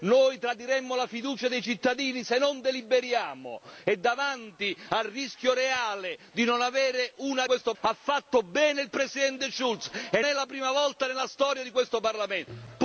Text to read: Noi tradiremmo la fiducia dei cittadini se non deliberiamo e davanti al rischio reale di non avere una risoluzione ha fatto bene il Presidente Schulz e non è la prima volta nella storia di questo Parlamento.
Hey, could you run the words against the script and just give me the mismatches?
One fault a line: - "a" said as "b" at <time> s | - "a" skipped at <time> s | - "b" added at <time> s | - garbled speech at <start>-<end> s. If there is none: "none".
- "risoluzione" said as "questo" at 7.5 s
- "non" skipped at 10.2 s